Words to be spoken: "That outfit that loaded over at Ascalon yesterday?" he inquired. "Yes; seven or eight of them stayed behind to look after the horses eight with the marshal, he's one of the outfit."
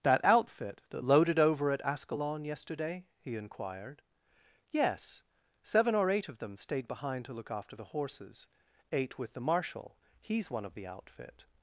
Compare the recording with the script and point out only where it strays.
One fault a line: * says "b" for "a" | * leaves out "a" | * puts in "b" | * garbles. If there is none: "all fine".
all fine